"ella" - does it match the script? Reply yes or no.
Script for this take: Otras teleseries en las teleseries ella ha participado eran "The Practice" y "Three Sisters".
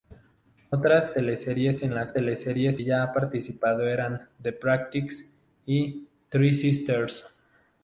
yes